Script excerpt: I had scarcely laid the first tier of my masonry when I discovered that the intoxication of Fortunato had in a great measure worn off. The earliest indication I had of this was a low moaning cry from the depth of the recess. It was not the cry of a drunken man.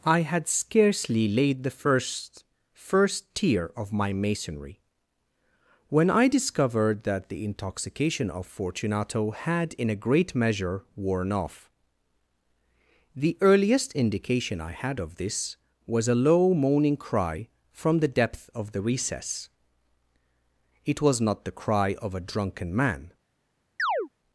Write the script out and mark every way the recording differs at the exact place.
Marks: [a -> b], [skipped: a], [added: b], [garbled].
I had scarcely laid the first [added: first] tier of my masonry when I discovered that the intoxication of Fortunato had in a great measure worn off. The earliest indication I had of this was a low moaning cry from the depth of the recess. It was not the cry of a drunken man.